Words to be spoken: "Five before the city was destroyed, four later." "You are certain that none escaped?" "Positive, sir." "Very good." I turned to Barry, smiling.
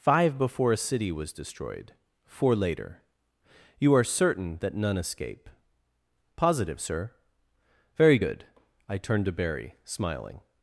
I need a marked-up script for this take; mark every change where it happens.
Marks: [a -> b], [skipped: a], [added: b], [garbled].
"Five before [the -> a] city was destroyed, four later." "You are certain that none [escaped?" -> escape] "Positive, sir." "Very good." I turned to Barry, smiling.